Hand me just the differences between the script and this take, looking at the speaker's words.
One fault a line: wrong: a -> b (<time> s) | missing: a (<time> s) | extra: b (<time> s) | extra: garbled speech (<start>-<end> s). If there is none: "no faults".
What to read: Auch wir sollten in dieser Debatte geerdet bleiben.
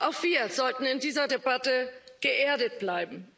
no faults